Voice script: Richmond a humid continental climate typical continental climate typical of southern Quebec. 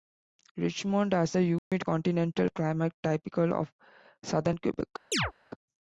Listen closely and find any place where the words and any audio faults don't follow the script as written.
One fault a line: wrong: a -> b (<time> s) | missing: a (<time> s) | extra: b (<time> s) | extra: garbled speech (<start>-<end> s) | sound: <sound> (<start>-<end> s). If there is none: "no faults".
extra: has (1.1 s)
sound: dropout (1.6-1.7 s)
missing: continental climate typical (3.5 s)
sound: chirp (5.1-5.3 s)